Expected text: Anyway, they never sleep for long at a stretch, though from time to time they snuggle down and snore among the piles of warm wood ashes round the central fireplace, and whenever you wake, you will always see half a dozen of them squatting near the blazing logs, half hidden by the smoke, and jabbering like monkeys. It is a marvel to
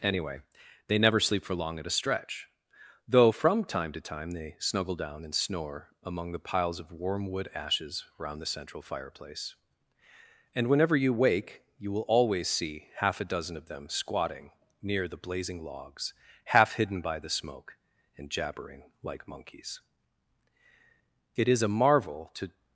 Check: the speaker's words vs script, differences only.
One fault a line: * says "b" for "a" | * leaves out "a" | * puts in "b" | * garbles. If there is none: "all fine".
all fine